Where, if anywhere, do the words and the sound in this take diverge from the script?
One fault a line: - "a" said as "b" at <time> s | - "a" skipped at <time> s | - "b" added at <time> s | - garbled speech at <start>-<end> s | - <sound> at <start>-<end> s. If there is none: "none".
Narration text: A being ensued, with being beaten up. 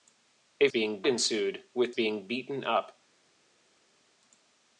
none